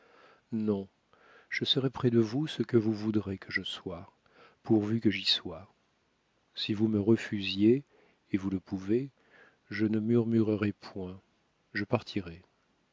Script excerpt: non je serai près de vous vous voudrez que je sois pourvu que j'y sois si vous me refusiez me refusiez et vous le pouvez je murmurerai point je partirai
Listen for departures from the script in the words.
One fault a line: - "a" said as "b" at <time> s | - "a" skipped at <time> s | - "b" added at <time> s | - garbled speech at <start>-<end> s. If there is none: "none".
- "ce que" added at 2.5 s
- "me refusiez" skipped at 7.8 s
- "ne" added at 9.8 s